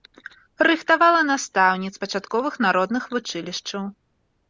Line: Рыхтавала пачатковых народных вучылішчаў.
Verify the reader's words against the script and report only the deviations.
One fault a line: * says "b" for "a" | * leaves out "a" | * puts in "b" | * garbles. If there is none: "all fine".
* puts in "настаўніц"